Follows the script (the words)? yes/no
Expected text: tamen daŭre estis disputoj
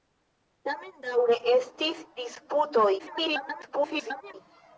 no